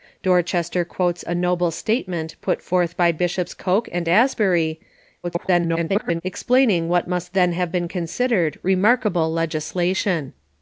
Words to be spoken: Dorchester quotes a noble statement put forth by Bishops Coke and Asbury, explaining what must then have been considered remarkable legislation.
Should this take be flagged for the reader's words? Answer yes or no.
yes